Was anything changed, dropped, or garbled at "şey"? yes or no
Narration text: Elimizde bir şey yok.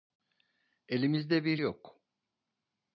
yes